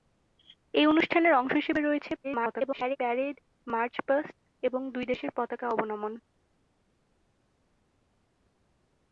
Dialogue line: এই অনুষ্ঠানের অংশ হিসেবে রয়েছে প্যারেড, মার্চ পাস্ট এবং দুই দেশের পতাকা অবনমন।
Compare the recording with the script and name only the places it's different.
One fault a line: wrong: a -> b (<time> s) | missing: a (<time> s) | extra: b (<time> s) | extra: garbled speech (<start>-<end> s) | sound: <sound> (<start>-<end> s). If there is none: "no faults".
extra: garbled speech (2.2-3.0 s)